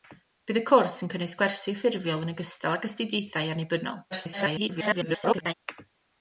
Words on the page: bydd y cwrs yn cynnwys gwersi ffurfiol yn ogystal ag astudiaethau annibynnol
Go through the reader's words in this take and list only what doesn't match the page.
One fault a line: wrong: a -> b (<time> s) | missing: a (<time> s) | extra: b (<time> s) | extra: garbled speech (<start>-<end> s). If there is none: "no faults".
extra: garbled speech (4.1-5.5 s)